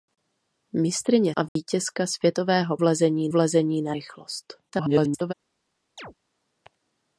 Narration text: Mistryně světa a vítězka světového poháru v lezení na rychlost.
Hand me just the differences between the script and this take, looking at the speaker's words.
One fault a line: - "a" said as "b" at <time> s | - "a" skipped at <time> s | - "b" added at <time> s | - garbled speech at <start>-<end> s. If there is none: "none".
- "světa" skipped at 1.3 s
- "poháru" said as "lezení" at 2.8 s
- garbled speech at 4.7-5.3 s